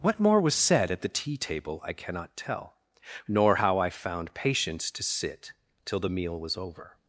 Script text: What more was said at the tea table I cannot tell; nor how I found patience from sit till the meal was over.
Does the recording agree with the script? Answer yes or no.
no